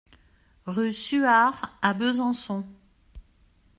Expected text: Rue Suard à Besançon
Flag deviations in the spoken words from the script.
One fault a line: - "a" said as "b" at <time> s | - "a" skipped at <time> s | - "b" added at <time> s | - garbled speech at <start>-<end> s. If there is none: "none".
none